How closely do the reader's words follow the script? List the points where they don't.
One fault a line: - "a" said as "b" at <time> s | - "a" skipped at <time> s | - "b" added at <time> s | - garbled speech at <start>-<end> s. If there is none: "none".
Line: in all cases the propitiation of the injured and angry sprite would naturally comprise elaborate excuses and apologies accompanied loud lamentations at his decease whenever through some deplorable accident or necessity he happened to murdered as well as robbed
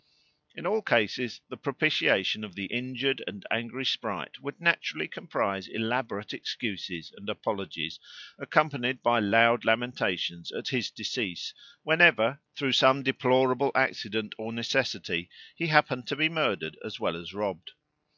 - "by" added at 9.0 s
- "be" added at 16.2 s